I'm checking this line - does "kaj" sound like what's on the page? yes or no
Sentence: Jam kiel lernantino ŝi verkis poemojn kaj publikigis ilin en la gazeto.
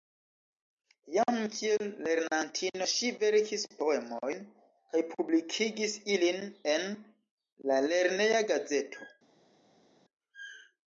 yes